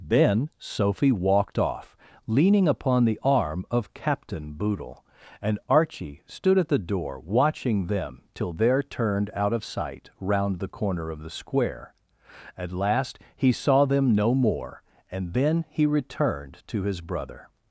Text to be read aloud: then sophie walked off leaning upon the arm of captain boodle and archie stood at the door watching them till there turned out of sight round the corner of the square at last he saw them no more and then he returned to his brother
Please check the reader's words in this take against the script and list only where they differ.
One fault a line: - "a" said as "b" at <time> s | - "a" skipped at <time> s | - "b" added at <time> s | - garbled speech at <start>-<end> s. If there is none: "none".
none